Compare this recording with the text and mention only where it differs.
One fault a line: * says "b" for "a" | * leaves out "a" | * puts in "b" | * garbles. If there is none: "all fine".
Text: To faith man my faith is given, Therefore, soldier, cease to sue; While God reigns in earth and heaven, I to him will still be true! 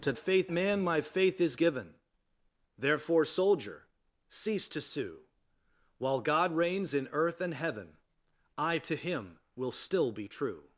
all fine